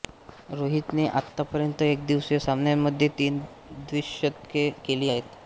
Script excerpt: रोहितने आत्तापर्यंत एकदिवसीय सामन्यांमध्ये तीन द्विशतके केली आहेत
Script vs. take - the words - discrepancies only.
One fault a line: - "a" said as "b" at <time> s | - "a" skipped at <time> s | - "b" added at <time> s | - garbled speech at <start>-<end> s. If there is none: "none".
none